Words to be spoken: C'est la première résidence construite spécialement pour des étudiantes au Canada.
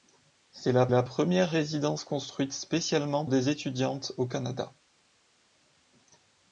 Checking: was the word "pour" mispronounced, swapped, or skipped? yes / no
yes